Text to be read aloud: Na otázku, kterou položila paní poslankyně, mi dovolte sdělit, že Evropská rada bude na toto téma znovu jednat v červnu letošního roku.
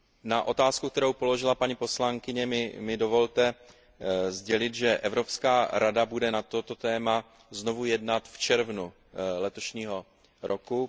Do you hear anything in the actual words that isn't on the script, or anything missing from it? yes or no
no